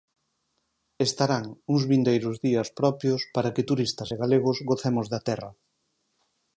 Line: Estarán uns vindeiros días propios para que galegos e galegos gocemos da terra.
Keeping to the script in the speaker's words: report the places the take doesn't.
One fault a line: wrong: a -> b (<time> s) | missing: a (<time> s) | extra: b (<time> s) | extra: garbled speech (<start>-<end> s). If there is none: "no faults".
wrong: galegos -> turistas (3.7 s)